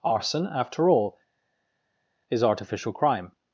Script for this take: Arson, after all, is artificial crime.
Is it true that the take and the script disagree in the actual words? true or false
false